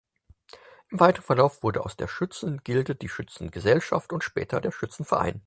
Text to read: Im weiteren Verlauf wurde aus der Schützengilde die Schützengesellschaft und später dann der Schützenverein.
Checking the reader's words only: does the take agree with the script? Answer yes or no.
no